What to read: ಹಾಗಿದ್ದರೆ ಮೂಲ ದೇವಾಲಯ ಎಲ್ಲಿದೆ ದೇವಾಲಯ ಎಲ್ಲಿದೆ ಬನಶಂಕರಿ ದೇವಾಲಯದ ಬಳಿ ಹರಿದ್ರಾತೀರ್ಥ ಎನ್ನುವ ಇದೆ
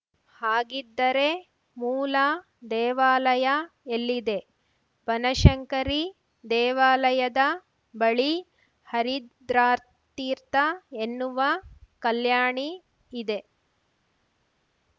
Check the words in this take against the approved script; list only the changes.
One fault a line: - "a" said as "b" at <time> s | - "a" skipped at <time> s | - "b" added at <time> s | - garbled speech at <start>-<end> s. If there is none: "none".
- "ದೇವಾಲಯ ಎಲ್ಲಿದೆ" skipped at 4.4 s
- "ಕಲ್ಯಾಣಿ" added at 12.0 s